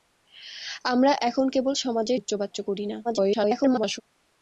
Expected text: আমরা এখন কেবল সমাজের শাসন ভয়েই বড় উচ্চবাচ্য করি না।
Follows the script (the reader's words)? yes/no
no